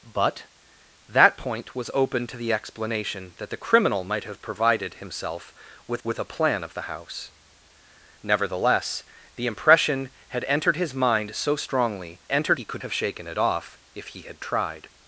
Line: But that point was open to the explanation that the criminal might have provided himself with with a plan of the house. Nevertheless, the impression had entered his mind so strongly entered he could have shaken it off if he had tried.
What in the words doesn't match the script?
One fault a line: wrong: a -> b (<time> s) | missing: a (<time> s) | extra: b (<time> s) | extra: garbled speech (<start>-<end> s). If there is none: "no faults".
no faults